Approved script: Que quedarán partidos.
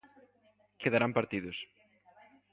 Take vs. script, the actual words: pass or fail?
pass